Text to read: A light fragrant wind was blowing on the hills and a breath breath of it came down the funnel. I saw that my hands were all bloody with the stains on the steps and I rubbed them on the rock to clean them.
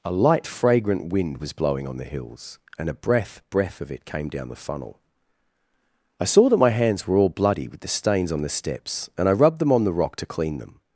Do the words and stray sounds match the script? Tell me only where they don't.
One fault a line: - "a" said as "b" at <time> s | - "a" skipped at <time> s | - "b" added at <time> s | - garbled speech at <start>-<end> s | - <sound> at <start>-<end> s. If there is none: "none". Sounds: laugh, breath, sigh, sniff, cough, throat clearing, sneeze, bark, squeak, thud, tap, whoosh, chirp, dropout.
none